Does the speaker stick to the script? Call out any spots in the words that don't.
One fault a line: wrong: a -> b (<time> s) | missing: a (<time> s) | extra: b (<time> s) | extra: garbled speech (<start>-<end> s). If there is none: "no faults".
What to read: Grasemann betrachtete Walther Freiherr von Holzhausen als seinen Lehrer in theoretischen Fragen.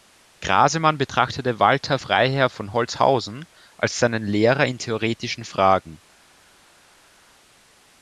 no faults